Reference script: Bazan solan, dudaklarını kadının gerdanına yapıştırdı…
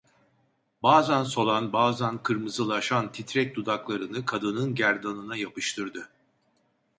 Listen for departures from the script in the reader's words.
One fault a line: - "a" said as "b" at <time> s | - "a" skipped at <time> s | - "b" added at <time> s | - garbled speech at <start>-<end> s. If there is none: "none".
- "bazan kırmızılaşan titrek" added at 1.7 s